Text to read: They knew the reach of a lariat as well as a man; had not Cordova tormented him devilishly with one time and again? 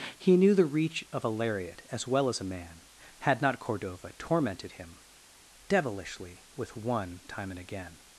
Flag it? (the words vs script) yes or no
yes